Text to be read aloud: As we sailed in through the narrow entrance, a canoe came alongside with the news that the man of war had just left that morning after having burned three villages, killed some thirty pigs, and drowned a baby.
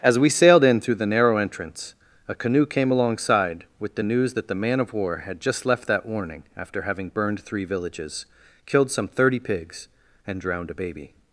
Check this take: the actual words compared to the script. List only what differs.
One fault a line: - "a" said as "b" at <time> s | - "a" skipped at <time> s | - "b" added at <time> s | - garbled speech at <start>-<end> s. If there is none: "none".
- "morning" said as "warning" at 6.0 s